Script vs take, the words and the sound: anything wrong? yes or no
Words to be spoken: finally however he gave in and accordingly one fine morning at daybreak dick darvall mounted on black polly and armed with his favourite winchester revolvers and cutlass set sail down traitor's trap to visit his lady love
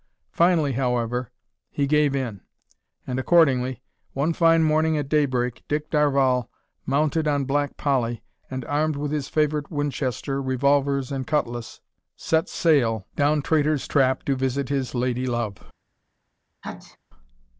yes